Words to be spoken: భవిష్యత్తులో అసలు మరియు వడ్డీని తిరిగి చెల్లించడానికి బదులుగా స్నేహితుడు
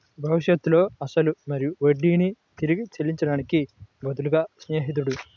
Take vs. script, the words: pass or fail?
pass